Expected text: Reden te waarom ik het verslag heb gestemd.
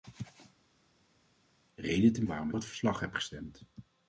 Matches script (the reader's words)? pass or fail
pass